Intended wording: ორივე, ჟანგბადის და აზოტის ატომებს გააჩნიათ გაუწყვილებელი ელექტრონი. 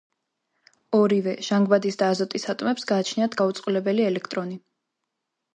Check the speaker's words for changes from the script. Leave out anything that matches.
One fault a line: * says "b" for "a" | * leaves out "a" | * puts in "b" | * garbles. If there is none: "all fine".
all fine